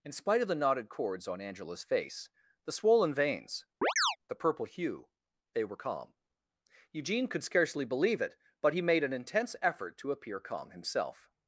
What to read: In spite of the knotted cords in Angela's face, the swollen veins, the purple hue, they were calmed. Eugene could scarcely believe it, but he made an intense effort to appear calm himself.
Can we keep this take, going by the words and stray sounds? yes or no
no